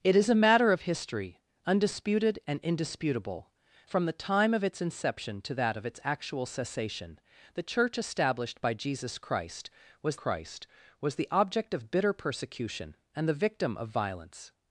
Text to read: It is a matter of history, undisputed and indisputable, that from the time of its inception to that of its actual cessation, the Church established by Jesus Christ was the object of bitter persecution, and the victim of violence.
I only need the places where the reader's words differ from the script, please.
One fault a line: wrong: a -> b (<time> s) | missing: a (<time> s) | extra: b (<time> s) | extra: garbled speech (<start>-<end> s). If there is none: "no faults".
missing: that (3.5 s)
extra: Christ was (10.1 s)